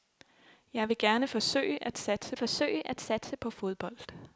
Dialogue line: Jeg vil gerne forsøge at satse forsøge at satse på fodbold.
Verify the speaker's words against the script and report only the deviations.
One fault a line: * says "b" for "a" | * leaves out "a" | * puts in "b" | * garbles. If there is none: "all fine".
all fine